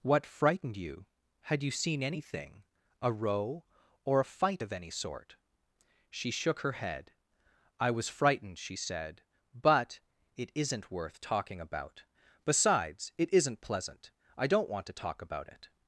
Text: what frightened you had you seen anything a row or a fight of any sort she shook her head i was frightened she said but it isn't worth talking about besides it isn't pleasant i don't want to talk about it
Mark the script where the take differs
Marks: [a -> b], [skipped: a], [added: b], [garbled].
what frightened you had you seen anything a row or a fight of any sort she shook her head i was frightened she said but it isn't worth talking about besides it isn't pleasant i don't want to talk about it